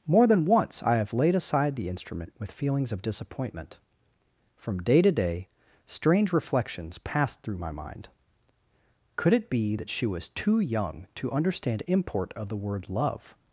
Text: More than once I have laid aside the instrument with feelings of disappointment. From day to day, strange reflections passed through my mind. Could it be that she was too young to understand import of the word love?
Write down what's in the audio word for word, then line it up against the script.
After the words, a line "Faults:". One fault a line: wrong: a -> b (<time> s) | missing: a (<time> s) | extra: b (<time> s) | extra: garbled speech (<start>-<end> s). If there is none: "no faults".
More than once I have laid aside the instrument with feelings of disappointment. From day to day, strange reflections passed through my mind. Could it be that she was too young to understand import of the word love?
Faults:
no faults